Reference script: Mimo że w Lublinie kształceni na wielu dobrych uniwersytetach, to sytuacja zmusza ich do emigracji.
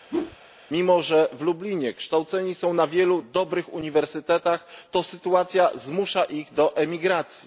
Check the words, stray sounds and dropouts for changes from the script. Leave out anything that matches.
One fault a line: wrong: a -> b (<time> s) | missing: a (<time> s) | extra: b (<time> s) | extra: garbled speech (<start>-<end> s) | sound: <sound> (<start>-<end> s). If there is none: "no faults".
sound: whoosh (0.1-0.4 s)
extra: są (2.5 s)